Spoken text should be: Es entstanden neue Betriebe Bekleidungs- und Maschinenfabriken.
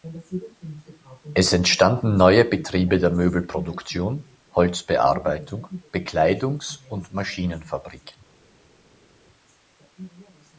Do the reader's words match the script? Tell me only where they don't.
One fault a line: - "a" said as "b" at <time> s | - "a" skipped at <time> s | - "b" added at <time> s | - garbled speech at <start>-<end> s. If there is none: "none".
- "der Möbelproduktion Holzbearbeitung" added at 3.0 s